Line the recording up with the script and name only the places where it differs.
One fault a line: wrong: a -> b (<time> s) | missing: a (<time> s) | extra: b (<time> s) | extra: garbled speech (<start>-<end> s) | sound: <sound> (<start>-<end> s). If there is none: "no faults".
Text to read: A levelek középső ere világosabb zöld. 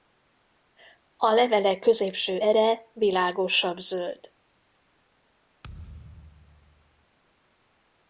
sound: thud (5.6-7.1 s)